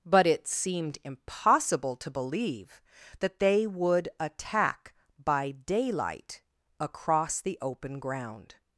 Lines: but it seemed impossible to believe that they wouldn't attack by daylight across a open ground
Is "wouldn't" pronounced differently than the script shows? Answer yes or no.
yes